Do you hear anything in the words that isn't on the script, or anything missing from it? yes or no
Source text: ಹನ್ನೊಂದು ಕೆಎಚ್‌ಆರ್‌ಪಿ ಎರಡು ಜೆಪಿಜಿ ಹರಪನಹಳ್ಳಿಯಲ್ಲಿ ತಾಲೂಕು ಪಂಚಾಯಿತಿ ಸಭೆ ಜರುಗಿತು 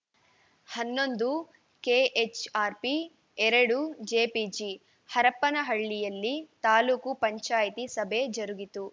no